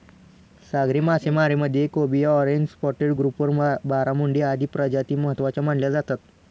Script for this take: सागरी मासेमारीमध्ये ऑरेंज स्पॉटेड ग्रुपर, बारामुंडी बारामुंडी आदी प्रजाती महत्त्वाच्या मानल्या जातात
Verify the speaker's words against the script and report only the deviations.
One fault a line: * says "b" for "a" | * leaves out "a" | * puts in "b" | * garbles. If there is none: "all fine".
* puts in "कोबिया"
* leaves out "बारामुंडी"